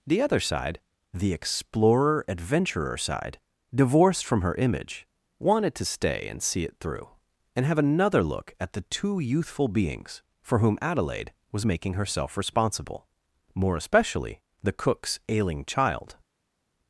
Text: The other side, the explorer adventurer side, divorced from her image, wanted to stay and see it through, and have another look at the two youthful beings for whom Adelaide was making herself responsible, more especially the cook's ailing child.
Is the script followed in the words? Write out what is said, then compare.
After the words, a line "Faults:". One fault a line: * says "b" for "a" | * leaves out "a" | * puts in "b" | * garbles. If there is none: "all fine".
The other side, the explorer adventurer side, divorced from her image, wanted to stay and see it through, and have another look at the two youthful beings for whom Adelaide was making herself responsible, more especially the cook's ailing child.
Faults:
all fine